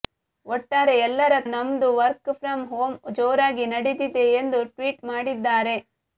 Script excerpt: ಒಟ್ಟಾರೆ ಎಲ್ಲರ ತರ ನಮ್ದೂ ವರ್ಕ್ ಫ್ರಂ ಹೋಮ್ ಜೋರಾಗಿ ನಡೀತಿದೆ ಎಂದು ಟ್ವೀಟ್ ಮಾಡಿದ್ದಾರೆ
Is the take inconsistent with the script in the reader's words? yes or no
yes